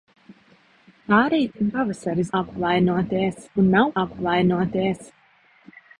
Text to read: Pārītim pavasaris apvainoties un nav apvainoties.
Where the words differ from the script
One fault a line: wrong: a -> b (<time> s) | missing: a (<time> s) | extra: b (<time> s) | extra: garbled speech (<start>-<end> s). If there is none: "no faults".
no faults